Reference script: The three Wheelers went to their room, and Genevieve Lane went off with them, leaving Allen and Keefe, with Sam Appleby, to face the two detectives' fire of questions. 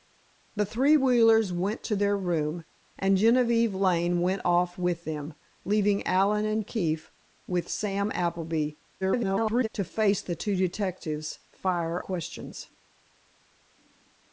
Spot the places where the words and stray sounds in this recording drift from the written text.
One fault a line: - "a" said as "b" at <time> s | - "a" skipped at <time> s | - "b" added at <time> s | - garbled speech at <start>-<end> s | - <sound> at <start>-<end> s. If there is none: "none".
- garbled speech at 9.0-9.7 s
- "of" skipped at 12.0 s